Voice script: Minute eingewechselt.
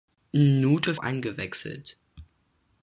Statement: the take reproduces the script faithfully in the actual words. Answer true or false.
true